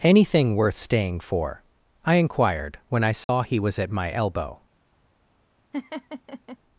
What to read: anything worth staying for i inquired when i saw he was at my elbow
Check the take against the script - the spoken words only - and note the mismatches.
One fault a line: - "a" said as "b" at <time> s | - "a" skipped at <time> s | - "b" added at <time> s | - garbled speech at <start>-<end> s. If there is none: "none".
none